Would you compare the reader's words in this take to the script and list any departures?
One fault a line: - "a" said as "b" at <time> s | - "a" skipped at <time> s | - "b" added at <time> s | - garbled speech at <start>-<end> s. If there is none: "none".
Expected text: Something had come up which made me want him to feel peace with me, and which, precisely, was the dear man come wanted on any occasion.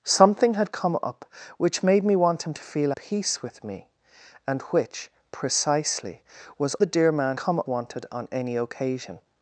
none